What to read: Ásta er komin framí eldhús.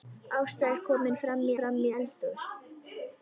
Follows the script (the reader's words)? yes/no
no